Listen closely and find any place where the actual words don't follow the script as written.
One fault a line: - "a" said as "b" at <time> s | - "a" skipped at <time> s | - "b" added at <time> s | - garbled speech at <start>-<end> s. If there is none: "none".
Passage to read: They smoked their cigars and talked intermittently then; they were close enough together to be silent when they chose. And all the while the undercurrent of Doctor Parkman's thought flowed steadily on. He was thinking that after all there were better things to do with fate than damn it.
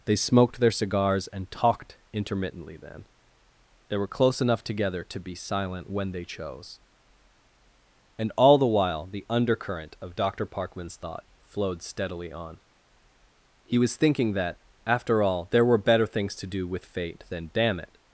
none